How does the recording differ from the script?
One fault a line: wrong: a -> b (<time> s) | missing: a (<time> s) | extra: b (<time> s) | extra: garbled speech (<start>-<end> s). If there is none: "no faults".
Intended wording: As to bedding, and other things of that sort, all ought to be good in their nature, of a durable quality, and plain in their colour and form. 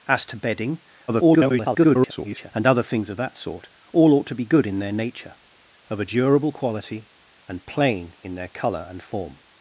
extra: garbled speech (1.1-2.5 s)